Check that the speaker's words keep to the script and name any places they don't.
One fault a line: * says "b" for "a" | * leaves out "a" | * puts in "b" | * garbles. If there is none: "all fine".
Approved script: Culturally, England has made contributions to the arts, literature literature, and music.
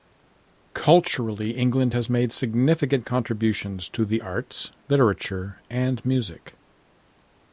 * puts in "significant"
* leaves out "literature"